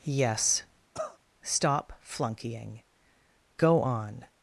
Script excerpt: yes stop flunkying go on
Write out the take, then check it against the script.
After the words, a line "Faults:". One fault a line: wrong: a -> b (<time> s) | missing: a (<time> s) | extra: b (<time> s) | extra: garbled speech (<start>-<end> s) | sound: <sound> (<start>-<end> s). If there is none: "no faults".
yes stop flunkying go on
Faults:
sound: cough (0.9-1.2 s)